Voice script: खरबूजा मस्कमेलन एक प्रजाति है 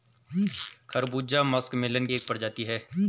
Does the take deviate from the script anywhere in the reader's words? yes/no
no